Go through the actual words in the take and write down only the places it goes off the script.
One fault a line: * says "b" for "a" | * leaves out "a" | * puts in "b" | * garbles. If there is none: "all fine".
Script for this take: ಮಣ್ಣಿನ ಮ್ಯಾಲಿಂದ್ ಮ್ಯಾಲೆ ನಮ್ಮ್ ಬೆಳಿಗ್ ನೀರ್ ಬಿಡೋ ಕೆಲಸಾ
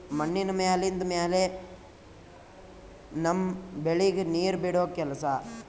all fine